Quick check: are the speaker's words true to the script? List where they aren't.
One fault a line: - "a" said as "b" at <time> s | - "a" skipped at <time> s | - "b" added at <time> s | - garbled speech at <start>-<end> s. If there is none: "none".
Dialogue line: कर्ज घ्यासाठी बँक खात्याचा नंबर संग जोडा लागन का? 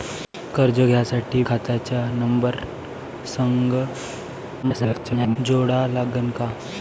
- "बँक" skipped at 1.4 s
- garbled speech at 4.6-5.4 s